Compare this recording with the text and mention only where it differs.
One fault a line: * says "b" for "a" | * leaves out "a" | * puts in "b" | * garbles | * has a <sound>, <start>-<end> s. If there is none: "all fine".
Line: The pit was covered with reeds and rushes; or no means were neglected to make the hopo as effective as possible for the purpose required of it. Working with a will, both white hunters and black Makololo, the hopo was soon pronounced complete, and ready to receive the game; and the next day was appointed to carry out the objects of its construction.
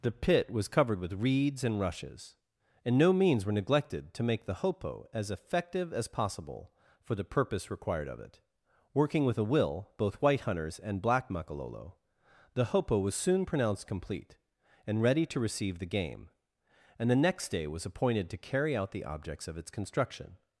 * says "and" for "or"